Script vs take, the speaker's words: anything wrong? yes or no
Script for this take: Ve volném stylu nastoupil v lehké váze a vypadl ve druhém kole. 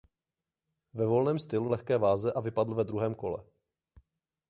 yes